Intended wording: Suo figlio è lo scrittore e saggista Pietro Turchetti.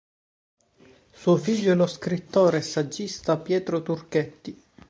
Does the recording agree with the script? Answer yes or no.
yes